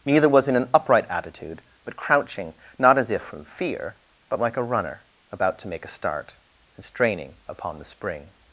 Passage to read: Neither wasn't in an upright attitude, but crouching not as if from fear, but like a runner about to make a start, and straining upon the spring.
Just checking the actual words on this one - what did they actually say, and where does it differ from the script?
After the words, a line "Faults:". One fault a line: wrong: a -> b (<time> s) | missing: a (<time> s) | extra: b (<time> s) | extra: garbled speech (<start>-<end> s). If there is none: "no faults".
Neither was in an upright attitude, but crouching not as if from fear, but like a runner about to make a start, and straining upon the spring.
Faults:
wrong: wasn't -> was (0.3 s)